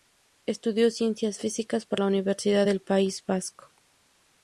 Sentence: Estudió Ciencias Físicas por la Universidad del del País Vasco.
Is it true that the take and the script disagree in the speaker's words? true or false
true